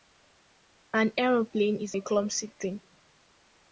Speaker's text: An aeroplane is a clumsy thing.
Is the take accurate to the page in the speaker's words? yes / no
yes